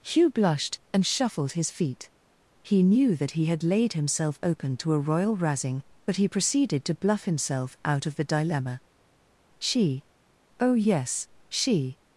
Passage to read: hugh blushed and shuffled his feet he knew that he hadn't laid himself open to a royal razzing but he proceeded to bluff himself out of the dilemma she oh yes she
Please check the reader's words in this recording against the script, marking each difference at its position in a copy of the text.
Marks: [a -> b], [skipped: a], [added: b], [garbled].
hugh blushed and shuffled his feet he knew that he [hadn't -> had] laid himself open to a royal razzing but he proceeded to bluff himself out of the dilemma she oh yes she